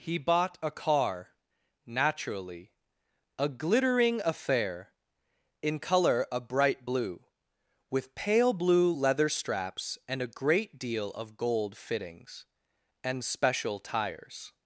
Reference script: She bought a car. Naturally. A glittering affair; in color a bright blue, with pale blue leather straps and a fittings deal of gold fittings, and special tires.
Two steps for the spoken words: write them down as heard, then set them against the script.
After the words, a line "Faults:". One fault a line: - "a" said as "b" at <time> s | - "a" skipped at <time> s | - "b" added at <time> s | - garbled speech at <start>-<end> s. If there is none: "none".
He bought a car. Naturally. A glittering affair; in color a bright blue, with pale blue leather straps and a great deal of gold fittings, and special tires.
Faults:
- "She" said as "He" at 0.0 s
- "fittings" said as "great" at 10.3 s